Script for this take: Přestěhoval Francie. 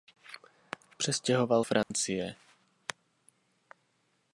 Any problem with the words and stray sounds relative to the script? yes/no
yes